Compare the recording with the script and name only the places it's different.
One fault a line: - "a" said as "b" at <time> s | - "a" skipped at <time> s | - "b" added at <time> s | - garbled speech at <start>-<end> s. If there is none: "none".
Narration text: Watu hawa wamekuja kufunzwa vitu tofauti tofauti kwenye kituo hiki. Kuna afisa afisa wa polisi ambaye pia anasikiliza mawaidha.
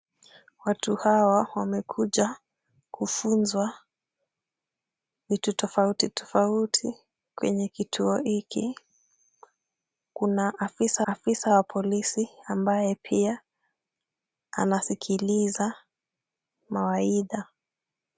none